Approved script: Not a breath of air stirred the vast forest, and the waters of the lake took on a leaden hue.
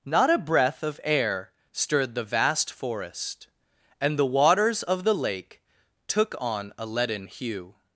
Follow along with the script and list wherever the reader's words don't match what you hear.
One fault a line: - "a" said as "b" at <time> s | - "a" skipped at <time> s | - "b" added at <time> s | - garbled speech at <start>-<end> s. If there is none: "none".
none